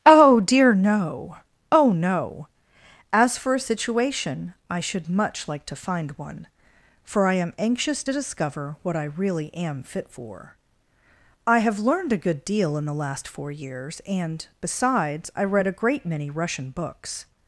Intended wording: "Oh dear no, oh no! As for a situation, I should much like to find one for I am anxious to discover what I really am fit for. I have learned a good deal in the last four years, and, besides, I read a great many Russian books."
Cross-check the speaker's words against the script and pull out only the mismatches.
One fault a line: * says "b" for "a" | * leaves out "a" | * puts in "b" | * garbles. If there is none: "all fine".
all fine